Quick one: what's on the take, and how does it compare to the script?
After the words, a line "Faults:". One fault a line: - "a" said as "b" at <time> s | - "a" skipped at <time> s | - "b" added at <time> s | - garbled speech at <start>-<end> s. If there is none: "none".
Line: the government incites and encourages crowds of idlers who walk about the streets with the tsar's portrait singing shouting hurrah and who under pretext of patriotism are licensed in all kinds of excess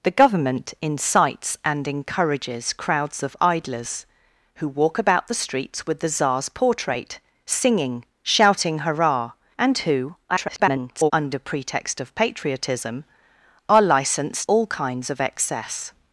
the government incites and encourages crowds of idlers who walk about the streets with the tsar's portrait singing shouting hurrah and who [garbled] under pretext of patriotism are licensed all kinds of excess
Faults:
- garbled speech at 10.3-11.1 s
- "in" skipped at 14.5 s